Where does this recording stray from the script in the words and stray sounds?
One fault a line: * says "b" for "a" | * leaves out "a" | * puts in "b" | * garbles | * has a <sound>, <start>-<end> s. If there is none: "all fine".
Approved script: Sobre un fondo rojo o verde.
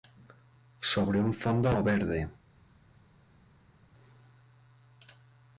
* leaves out "rojo"